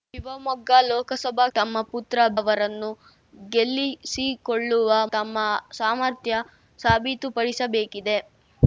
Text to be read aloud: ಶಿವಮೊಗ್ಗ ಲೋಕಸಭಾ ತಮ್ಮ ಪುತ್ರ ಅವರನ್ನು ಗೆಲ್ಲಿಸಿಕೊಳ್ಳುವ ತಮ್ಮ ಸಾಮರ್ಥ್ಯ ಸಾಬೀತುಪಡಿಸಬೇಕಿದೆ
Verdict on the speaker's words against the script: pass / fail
pass